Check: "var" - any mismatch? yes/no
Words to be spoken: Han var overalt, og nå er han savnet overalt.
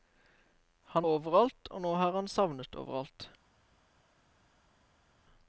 yes